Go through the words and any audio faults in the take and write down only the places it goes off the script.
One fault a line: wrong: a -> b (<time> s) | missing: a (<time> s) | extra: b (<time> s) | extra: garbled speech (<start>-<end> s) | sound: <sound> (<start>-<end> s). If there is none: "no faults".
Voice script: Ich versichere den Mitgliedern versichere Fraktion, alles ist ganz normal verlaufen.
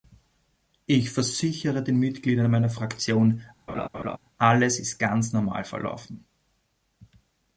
wrong: versichere -> meiner (2.5 s)
sound: laugh (3.7-4.2 s)